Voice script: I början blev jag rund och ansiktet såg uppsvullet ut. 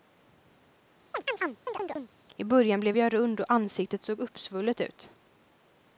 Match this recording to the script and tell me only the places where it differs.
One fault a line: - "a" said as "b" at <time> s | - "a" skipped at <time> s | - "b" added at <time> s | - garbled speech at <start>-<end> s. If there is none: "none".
none